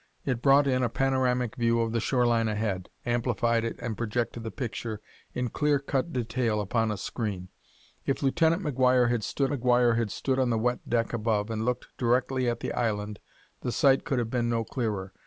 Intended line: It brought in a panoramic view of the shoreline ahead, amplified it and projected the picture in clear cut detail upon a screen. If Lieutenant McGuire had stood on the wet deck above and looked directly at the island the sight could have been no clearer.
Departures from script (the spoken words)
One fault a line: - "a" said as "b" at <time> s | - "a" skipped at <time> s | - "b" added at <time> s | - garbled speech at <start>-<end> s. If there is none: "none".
- "McGuire had stood" added at 9.5 s